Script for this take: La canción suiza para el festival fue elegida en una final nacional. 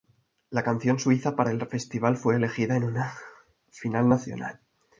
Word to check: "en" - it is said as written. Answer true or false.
true